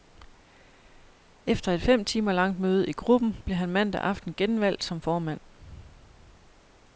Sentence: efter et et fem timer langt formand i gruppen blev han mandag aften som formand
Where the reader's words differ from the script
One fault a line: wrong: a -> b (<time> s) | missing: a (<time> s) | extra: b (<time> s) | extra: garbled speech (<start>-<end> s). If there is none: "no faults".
missing: et (1.8 s)
wrong: formand -> møde (2.6 s)
extra: genvalgt (4.3 s)